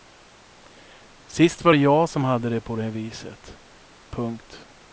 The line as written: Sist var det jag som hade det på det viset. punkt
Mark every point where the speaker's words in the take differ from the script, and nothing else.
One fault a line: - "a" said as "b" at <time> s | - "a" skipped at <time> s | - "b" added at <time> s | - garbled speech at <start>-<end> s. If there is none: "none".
none